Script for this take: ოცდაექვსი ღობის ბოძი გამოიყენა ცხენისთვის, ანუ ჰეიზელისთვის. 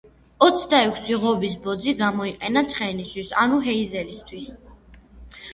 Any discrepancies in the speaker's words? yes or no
no